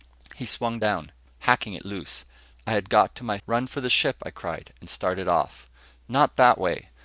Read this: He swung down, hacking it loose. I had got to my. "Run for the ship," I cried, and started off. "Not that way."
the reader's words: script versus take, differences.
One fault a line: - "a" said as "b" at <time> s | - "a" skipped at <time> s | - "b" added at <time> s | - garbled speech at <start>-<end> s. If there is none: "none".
none